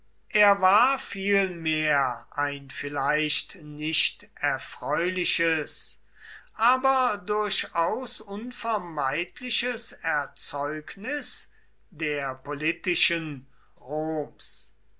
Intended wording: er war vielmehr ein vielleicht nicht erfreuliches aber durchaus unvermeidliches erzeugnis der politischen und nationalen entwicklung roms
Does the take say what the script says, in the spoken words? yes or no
no